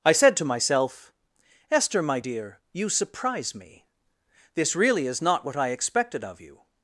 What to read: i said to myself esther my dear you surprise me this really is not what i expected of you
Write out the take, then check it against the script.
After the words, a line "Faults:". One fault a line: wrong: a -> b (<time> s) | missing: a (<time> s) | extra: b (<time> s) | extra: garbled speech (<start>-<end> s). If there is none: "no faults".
i said to myself esther my dear you surprise me this really is not what i expected of you
Faults:
no faults